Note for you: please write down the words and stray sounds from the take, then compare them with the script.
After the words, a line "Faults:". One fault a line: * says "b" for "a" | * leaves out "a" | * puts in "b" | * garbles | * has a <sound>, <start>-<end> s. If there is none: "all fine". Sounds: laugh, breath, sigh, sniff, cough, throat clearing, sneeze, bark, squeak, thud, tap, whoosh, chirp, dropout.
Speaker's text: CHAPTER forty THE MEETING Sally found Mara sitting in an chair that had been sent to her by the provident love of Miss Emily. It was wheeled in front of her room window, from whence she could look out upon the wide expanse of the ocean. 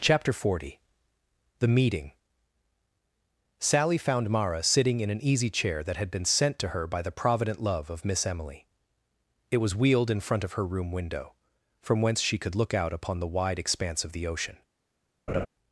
CHAPTER forty THE MEETING Sally found Mara sitting in an easy chair that had been sent to her by the provident love of Miss Emily. It was wheeled in front of her room window, from whence she could look out upon the wide expanse of the ocean.
Faults:
* puts in "easy"
* has a laugh, 15.3-15.5 s